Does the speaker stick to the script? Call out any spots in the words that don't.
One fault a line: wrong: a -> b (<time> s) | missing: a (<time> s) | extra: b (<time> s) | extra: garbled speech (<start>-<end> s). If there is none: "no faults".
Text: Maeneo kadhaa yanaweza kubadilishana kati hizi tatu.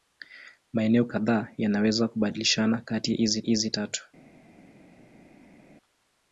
extra: hizi (3.4 s)